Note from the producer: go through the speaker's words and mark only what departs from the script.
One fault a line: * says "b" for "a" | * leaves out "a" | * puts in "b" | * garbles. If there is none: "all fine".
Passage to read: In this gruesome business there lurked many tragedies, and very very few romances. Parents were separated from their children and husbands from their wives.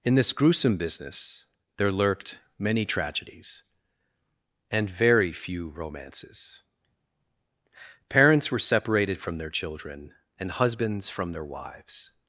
* leaves out "very"